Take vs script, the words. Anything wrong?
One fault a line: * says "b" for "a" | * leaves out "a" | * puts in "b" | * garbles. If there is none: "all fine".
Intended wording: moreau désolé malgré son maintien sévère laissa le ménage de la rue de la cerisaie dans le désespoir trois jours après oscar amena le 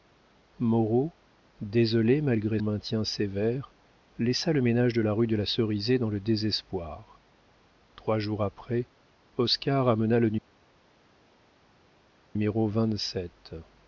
* leaves out "son"